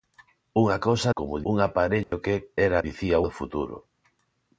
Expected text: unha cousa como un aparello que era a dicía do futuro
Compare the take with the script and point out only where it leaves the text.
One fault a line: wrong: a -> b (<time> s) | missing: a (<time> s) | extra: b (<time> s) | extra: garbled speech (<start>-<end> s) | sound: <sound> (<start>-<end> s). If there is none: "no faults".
sound: dropout (2.0-2.1 s)